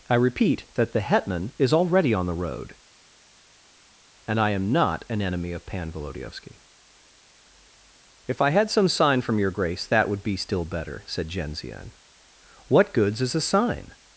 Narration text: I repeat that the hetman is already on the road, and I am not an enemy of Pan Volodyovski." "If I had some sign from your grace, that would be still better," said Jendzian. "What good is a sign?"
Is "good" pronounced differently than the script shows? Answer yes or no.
yes